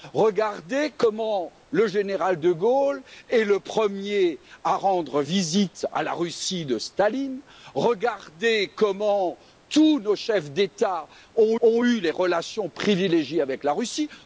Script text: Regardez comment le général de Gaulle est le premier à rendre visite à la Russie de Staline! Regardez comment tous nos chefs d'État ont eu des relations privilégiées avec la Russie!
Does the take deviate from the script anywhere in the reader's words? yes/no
yes